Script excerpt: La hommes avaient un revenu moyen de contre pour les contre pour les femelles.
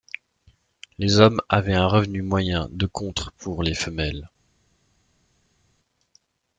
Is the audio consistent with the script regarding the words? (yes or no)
no